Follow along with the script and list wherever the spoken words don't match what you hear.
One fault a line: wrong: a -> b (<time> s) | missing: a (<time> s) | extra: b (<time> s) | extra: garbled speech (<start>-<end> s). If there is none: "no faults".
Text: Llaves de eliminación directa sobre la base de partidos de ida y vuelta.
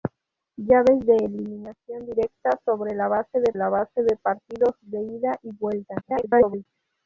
extra: la base de (3.6 s)
extra: garbled speech (6.0-6.7 s)